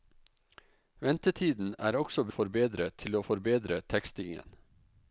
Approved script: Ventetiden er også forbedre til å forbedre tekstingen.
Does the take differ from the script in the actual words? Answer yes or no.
no